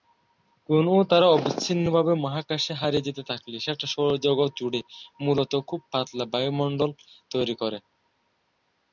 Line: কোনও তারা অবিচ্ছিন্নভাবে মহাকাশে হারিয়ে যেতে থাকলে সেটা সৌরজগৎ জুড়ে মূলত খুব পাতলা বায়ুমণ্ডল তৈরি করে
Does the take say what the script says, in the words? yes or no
yes